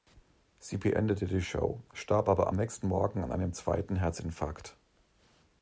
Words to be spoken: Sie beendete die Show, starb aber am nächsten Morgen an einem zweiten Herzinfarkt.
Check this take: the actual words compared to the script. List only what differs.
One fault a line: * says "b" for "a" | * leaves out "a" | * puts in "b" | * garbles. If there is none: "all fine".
all fine